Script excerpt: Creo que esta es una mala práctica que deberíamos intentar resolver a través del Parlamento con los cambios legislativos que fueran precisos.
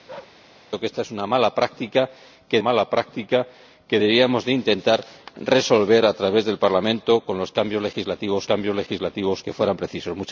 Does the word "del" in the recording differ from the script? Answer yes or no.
no